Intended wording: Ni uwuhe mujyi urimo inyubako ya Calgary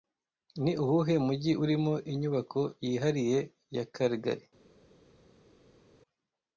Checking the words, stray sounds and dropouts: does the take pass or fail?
fail